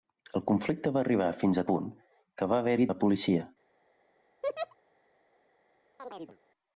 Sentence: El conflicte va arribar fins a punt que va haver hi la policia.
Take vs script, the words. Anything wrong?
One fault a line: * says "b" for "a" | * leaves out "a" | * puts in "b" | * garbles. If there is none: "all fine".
all fine